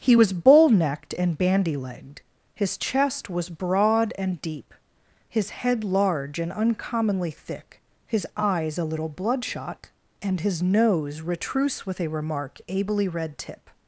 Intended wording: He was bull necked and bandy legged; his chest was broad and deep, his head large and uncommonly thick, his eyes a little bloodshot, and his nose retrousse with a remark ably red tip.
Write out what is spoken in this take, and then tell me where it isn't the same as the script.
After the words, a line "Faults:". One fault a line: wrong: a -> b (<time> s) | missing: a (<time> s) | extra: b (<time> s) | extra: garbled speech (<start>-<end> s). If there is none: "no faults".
He was bull necked and bandy legged; his chest was broad and deep, his head large and uncommonly thick, his eyes a little bloodshot, and his nose retrousse with a remark ably red tip.
Faults:
no faults